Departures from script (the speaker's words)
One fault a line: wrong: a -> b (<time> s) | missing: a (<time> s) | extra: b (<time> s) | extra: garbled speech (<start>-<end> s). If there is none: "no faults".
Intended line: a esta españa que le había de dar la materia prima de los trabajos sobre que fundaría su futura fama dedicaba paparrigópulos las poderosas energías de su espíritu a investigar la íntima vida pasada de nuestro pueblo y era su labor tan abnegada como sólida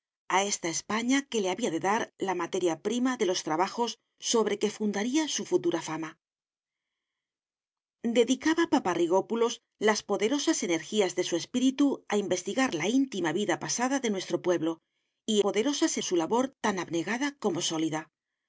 wrong: era -> poderosas (15.4 s)